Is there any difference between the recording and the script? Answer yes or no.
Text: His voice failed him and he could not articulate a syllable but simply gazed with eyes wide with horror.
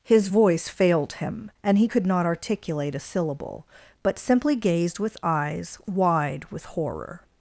no